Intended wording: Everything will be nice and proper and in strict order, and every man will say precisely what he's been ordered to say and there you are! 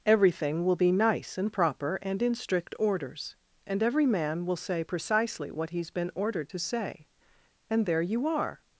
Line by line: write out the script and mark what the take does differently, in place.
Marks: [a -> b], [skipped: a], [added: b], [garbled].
Everything will be nice and proper and in strict [order, -> orders] and every man will say precisely what he's been ordered to say and there you are!